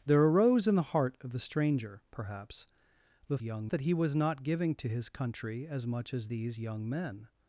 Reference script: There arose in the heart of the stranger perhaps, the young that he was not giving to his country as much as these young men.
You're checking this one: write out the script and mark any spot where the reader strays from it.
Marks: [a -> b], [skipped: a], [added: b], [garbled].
There arose in the heart of the stranger perhaps, the young that he was not giving to his country as much as these young men.